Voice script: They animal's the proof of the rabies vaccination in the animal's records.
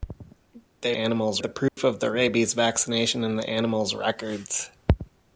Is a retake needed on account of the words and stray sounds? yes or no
yes